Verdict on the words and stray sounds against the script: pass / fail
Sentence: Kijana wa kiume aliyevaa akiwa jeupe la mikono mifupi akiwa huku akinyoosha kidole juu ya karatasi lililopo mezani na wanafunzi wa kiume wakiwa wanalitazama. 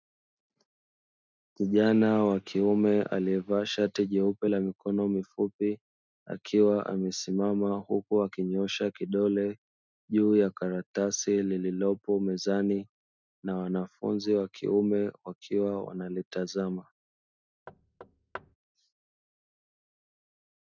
fail